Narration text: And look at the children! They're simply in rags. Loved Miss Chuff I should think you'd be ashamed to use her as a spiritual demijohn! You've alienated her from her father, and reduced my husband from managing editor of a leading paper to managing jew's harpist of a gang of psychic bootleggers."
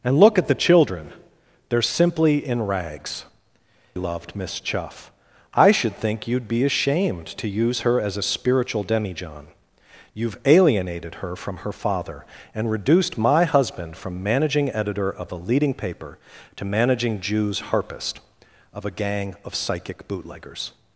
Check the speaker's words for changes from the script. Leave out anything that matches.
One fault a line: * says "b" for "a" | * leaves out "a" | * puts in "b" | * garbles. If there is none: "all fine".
all fine